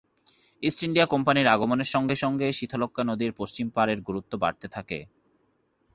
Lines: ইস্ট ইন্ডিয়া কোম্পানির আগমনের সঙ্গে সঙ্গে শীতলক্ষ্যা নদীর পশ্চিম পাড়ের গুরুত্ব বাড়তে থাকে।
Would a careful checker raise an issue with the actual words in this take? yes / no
no